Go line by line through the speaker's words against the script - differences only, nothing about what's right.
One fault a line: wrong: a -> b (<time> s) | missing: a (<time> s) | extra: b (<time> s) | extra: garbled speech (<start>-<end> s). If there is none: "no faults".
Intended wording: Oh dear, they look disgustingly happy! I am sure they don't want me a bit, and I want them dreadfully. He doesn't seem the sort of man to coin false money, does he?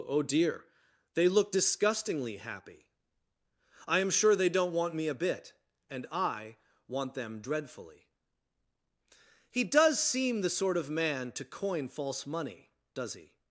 wrong: doesn't -> does (9.6 s)